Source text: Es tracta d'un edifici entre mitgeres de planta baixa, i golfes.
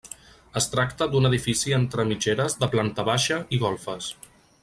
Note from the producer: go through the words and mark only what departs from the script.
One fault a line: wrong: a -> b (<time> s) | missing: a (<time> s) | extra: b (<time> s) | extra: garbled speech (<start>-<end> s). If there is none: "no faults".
no faults